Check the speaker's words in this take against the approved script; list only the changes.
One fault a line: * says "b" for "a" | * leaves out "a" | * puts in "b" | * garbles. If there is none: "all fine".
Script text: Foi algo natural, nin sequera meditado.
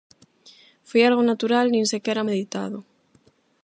all fine